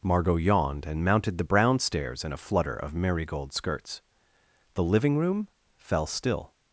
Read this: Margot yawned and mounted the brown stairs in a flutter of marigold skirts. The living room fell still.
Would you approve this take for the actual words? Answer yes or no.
yes